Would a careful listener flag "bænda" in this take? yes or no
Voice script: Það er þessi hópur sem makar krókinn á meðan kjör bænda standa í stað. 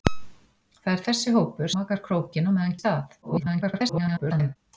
yes